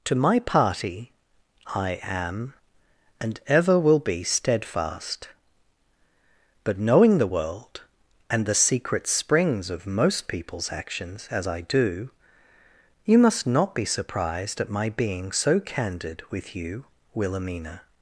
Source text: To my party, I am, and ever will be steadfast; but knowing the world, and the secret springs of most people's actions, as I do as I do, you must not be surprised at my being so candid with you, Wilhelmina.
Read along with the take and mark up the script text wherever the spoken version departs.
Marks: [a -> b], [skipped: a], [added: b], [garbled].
To my party, I am, and ever will be steadfast; but knowing the world, and the secret springs of most people's actions, as I do [skipped: as I do,] you must not be surprised at my being so candid with you, Wilhelmina.